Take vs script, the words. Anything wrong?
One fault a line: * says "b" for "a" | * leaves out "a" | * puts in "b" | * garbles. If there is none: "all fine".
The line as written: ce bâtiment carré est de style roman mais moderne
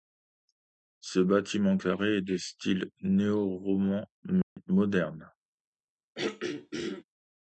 * puts in "néo"